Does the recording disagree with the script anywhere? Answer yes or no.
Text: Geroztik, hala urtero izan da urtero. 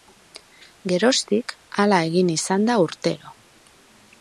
yes